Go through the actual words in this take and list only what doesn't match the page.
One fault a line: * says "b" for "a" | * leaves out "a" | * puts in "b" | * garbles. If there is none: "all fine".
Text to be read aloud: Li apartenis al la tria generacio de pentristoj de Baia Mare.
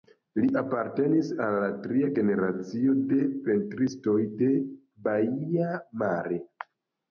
all fine